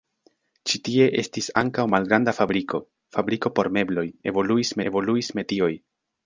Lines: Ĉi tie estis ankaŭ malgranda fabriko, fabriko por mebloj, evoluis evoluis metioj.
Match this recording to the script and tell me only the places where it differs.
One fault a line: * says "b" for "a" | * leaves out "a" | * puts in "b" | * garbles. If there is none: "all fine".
all fine